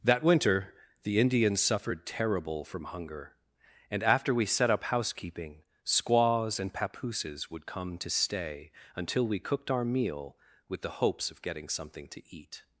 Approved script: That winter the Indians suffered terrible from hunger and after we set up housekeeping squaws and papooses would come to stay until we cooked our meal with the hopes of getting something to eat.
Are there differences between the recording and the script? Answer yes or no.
no